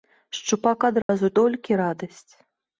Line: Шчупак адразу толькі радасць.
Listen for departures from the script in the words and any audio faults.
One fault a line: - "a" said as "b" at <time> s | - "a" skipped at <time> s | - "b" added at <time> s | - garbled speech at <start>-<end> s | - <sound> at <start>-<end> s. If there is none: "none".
- dropout at 1.0-1.1 s